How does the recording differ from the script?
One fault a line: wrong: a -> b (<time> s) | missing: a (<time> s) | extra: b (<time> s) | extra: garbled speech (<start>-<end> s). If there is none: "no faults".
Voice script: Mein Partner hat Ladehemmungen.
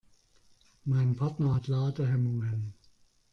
no faults